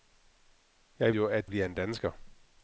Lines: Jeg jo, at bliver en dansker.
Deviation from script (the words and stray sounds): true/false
false